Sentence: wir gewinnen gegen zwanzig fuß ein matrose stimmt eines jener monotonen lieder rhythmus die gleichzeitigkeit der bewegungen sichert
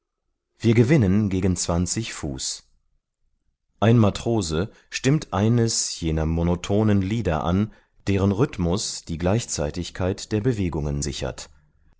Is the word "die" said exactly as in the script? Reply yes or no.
yes